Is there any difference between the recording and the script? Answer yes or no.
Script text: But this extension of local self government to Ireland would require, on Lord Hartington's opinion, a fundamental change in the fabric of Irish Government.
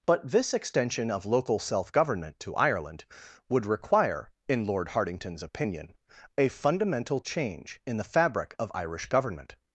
yes